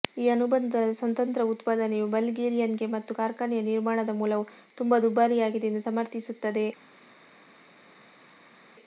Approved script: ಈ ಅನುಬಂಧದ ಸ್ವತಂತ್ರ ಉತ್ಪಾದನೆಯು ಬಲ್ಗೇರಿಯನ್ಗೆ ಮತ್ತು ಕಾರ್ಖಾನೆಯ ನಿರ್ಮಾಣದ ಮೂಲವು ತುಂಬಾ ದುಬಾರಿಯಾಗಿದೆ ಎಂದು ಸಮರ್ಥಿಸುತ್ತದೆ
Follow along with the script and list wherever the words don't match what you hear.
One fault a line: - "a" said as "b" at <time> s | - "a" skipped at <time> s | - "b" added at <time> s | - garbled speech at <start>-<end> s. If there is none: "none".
none